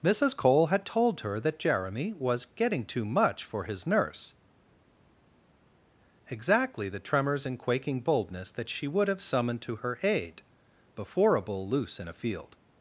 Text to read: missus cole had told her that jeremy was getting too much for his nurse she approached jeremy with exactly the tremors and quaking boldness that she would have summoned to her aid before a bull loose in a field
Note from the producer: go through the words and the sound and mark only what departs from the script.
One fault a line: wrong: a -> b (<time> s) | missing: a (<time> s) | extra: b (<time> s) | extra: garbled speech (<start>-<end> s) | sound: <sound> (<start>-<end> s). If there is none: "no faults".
missing: she approached jeremy with (4.3 s)